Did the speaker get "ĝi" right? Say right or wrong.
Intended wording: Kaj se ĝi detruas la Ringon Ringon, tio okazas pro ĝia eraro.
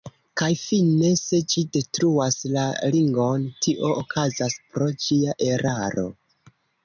right